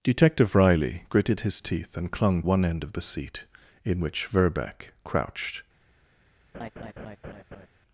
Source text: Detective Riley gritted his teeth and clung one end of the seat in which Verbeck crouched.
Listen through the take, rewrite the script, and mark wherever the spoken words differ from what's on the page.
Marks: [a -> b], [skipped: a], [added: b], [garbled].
Detective Riley gritted his teeth and clung one end of the seat in which Verbeck crouched.